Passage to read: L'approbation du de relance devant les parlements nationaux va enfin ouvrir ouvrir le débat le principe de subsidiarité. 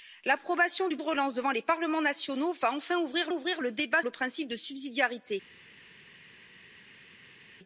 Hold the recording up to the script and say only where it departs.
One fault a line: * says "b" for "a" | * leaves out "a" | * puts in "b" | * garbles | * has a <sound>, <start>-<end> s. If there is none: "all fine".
all fine